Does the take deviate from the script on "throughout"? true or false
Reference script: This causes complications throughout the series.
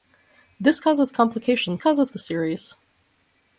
true